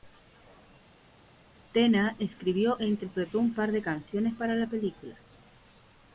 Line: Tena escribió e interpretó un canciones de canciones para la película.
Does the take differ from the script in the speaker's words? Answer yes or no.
yes